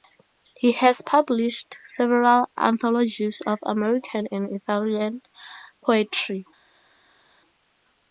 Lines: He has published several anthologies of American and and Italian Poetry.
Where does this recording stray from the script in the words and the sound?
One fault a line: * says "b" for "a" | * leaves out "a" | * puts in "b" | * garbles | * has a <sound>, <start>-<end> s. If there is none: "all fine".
* leaves out "and"